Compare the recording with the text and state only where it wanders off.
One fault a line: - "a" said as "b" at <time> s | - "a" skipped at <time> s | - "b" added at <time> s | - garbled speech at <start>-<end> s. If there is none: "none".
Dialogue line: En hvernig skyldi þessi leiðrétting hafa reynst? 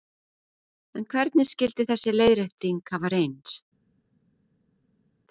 none